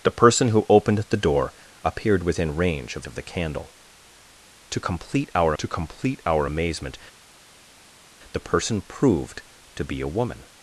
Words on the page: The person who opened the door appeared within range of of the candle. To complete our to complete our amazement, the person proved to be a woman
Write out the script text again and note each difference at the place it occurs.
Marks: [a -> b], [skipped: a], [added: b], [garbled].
The person who opened the door appeared within range of of the candle. To complete our to complete our amazement, the person proved to be a woman